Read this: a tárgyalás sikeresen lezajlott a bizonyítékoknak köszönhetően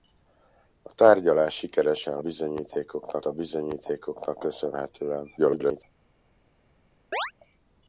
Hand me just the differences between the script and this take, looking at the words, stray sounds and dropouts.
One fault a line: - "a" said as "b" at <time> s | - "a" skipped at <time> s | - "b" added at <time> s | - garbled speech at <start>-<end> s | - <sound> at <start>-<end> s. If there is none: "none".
- "lezajlott" said as "bizonyítékoknak" at 2.2 s
- garbled speech at 5.4-5.8 s
- chirp at 7.1-7.3 s